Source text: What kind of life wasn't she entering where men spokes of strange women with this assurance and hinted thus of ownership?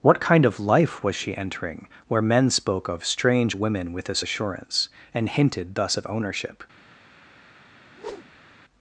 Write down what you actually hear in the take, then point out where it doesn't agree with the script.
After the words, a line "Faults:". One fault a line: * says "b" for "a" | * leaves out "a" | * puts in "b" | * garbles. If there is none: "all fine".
What kind of life was she entering where men spoke of strange women with this assurance and hinted thus of ownership?
Faults:
* says "was" for "wasn't"
* says "spoke" for "spokes"